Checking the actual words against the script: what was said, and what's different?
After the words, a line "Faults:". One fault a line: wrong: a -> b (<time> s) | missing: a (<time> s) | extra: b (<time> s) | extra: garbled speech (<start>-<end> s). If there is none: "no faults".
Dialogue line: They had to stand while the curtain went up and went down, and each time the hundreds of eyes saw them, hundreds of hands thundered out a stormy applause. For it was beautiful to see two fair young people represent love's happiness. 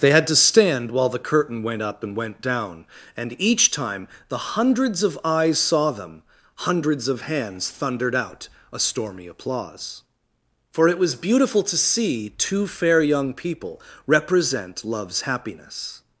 They had to stand while the curtain went up and went down, and each time the hundreds of eyes saw them, hundreds of hands thundered out a stormy applause. For it was beautiful to see two fair young people represent love's happiness.
Faults:
no faults